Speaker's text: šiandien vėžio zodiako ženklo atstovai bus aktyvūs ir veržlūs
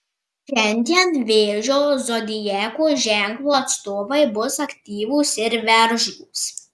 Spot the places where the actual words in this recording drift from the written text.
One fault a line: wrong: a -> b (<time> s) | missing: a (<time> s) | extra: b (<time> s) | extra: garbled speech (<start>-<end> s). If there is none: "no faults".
no faults